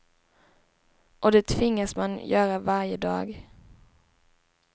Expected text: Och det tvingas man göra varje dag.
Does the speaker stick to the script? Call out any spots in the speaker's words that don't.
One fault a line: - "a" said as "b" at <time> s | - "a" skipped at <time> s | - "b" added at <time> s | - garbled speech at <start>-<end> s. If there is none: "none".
none